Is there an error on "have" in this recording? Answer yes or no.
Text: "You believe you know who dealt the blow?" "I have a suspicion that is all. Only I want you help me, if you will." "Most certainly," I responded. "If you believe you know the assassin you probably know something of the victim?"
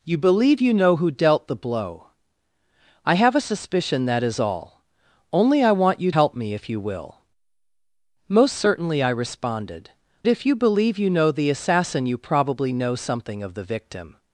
no